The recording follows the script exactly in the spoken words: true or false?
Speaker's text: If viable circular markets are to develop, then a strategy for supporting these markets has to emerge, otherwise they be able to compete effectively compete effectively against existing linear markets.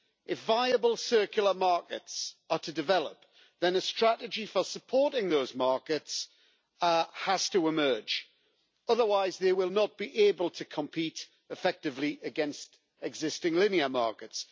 false